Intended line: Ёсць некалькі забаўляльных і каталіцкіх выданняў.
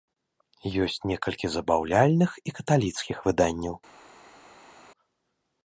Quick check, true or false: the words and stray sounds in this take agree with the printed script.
true